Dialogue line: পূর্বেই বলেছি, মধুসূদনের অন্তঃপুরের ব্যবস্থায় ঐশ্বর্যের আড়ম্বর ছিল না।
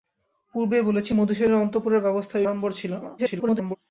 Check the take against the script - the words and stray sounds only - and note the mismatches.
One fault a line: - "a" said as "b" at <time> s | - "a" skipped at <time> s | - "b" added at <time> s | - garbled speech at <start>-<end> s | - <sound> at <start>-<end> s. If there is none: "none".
- "ঐশ্বর্যের" skipped at 2.4 s
- garbled speech at 3.2-3.8 s